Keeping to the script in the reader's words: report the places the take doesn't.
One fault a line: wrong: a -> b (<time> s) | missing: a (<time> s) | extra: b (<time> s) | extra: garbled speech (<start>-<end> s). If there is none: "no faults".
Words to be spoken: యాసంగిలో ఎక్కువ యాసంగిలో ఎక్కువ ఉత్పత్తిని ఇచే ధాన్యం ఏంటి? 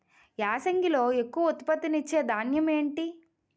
missing: యాసంగిలో ఎక్కువ (1.5 s)